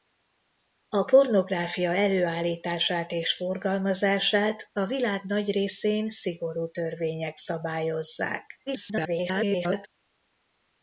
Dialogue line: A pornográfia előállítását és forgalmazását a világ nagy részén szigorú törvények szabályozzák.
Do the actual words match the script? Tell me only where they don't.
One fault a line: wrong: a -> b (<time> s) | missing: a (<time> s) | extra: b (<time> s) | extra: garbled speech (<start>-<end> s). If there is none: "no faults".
extra: garbled speech (8.7-9.9 s)